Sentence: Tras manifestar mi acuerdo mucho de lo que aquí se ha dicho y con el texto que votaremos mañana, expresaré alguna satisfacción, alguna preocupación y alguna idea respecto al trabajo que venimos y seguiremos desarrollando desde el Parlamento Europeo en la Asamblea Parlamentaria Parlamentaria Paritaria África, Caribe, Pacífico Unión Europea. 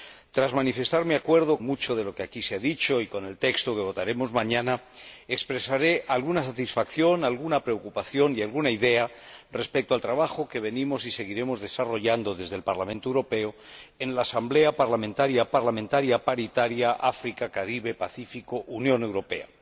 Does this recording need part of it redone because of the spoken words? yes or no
no